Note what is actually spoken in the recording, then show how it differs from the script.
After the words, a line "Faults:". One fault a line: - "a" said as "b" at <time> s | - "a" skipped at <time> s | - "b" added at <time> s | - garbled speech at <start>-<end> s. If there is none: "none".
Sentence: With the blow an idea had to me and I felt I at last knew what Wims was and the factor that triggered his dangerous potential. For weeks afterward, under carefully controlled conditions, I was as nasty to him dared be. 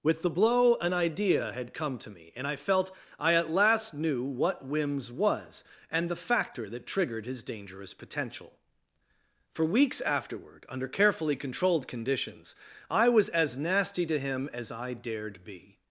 With the blow an idea had come to me and I felt I at last knew what Wims was and the factor that triggered his dangerous potential. For weeks afterward, under carefully controlled conditions, I was as nasty to him as I dared be.
Faults:
- "come" added at 1.7 s
- "as I" added at 14.5 s